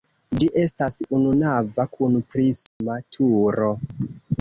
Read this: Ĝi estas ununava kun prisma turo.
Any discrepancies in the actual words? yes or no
no